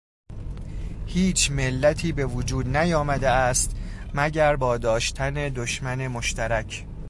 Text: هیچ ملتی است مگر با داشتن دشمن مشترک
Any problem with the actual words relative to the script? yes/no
yes